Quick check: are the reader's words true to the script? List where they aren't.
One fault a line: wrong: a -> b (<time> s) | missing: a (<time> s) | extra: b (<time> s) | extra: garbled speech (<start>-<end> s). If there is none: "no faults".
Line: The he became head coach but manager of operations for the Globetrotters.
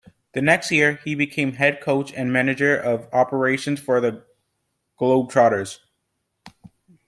extra: next year (0.4 s)
wrong: but -> and (2.1 s)